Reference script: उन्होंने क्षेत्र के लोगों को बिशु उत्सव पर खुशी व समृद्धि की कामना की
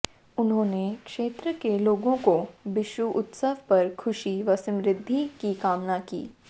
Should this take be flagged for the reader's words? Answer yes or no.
no